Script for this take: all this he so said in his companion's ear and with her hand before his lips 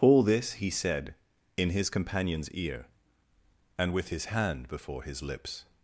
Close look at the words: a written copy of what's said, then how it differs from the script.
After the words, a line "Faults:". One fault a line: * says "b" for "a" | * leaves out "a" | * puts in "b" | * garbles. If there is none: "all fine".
all this he said in his companion's ear and with his hand before his lips
Faults:
* leaves out "so"
* says "his" for "her"